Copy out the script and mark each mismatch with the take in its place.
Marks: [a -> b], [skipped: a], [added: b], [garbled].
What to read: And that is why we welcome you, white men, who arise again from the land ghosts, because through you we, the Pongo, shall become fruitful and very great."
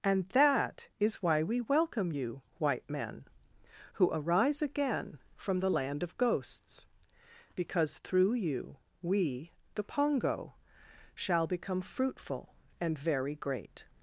And that is why we welcome you, white men, who arise again from the land [added: of] ghosts, because through you we, the Pongo, shall become fruitful and very great."